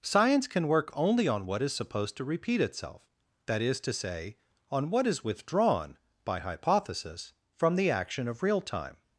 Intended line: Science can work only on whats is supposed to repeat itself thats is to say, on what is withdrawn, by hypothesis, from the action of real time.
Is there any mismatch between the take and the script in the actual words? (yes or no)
yes